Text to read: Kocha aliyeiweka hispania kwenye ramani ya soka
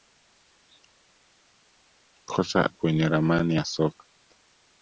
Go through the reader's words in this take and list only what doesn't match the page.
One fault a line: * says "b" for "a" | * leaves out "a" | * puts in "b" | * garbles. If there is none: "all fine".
* leaves out "aliyeiweka hispania"